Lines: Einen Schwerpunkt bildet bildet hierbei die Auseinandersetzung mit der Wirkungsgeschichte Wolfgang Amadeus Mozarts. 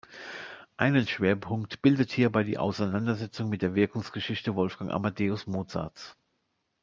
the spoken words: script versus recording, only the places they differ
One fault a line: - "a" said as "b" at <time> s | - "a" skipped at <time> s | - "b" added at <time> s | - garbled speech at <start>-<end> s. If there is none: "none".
- "bildet" skipped at 2.1 s